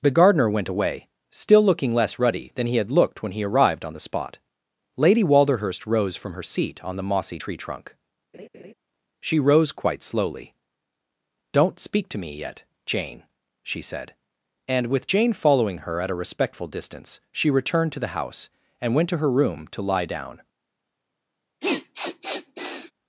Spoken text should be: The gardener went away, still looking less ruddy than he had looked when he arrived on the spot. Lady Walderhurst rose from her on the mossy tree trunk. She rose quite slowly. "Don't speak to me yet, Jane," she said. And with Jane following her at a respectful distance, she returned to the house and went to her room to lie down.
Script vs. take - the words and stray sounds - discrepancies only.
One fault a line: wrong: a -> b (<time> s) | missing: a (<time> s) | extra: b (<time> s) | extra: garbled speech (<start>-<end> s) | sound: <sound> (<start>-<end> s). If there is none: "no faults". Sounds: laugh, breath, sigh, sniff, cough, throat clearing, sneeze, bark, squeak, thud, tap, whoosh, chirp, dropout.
extra: seat (6.4 s)
sound: laugh (8.3-8.7 s)
sound: sniff (21.6-22.9 s)